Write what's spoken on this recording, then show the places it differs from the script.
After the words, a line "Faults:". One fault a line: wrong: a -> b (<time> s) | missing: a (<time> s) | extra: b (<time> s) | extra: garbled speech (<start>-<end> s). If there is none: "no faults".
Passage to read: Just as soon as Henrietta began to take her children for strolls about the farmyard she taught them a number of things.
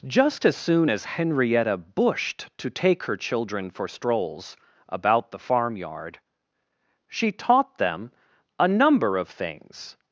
Just as soon as Henrietta bushed to take her children for strolls about the farmyard she taught them a number of things.
Faults:
wrong: began -> bushed (1.8 s)